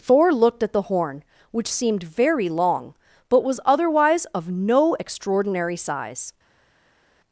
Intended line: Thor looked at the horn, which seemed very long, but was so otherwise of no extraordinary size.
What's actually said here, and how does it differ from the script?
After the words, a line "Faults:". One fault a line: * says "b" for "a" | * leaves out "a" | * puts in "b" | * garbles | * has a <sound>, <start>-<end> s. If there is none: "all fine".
Thor looked at the horn, which seemed very long, but was otherwise of no extraordinary size.
Faults:
* leaves out "so"